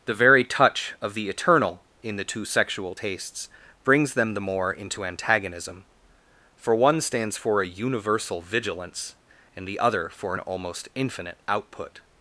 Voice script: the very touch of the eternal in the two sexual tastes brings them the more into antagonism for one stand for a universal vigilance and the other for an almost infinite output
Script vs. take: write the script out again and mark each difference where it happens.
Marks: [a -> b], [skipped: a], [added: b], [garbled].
the very touch of the eternal in the two sexual tastes brings them the more into antagonism for one [stand -> stands] for a universal vigilance and the other for an almost infinite output